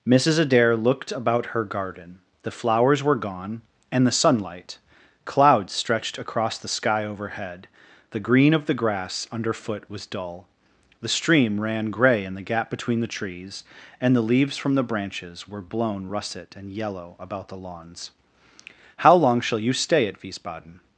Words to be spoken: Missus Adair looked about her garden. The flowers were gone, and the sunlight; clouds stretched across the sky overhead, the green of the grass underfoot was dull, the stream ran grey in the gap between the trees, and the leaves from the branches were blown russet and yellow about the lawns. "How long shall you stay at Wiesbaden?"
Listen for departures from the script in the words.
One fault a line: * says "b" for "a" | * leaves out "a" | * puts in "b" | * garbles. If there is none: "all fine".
all fine